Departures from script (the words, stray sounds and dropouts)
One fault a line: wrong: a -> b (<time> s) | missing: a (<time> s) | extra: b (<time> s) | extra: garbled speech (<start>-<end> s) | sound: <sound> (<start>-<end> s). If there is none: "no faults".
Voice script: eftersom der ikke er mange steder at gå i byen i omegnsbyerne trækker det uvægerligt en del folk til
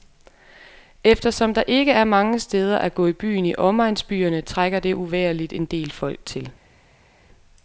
no faults